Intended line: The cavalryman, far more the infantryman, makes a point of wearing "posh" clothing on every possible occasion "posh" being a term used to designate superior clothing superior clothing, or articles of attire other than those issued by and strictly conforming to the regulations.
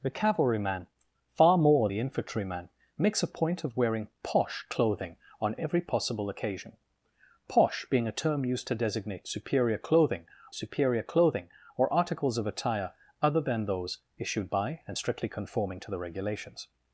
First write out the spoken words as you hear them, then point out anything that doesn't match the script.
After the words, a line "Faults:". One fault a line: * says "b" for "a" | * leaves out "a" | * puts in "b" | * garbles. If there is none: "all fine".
The cavalryman, far more the infantryman, makes a point of wearing "posh" clothing on every possible occasion "posh" being a term used to designate superior clothing superior clothing, or articles of attire other than those issued by and strictly conforming to the regulations.
Faults:
all fine